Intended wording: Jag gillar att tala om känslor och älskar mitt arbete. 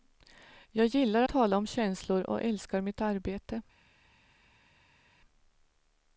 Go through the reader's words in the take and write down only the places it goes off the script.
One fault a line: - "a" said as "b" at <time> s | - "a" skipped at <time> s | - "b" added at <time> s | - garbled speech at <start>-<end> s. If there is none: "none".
- "att" skipped at 1.2 s